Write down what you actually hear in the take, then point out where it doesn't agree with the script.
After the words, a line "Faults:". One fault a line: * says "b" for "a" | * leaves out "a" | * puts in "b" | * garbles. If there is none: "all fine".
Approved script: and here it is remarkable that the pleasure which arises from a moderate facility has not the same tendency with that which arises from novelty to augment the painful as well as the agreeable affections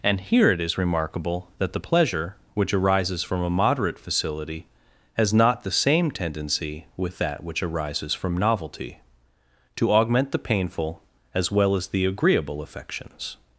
and here it is remarkable that the pleasure which arises from a moderate facility has not the same tendency with that which arises from novelty to augment the painful as well as the agreeable affections
Faults:
all fine